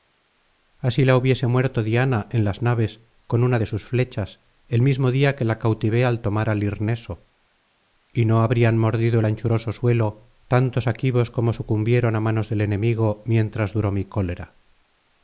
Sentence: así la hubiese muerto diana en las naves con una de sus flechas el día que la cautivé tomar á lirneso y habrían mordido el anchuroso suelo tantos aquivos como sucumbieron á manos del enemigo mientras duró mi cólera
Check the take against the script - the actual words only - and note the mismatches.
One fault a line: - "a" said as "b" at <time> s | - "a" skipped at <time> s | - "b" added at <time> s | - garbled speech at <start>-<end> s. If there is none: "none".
- "mismo" added at 4.8 s
- "al" added at 6.0 s
- "no" added at 8.2 s